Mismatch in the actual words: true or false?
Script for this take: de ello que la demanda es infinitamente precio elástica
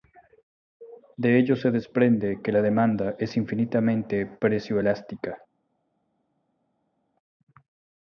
true